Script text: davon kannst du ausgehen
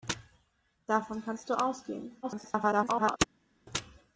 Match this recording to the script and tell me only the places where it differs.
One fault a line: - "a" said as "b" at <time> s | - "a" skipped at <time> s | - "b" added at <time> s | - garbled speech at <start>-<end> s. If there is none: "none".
- garbled speech at 2.2-3.2 s